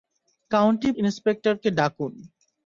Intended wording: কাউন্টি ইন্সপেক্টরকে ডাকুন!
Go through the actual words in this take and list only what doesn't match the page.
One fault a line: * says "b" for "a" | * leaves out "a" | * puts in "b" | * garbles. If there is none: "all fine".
all fine